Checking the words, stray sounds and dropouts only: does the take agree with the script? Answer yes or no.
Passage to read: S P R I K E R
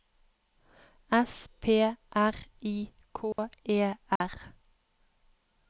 no